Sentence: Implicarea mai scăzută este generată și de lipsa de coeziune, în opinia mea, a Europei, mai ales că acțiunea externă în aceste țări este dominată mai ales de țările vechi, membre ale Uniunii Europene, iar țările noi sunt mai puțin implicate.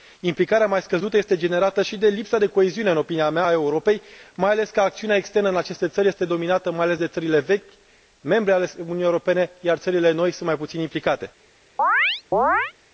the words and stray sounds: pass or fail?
fail